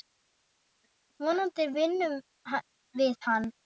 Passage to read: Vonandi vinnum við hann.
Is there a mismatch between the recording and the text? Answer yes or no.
no